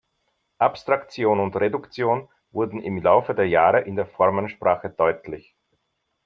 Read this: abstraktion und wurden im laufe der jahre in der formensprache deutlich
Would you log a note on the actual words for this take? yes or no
yes